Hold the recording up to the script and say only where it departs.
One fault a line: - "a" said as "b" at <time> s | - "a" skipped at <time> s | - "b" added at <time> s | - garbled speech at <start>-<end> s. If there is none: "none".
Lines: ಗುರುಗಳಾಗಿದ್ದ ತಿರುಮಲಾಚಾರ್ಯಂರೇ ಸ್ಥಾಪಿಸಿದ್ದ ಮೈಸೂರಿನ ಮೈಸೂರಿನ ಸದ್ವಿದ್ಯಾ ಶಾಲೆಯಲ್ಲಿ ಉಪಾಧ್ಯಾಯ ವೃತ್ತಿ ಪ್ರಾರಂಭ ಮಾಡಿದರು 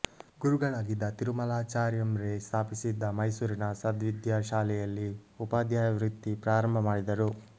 - "ಮೈಸೂರಿನ" skipped at 3.7 s